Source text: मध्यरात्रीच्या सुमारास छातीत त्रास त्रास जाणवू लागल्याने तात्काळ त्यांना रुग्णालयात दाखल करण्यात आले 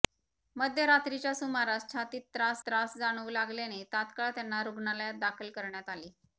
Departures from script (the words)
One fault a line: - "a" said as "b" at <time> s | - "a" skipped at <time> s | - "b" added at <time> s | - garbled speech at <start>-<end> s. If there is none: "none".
none